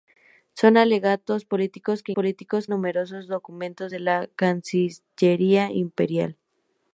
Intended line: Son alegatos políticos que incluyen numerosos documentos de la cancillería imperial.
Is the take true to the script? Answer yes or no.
no